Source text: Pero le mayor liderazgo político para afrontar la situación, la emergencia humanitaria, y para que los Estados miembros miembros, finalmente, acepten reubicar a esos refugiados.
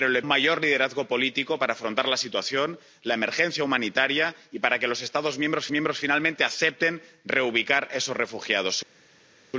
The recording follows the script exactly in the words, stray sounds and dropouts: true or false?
true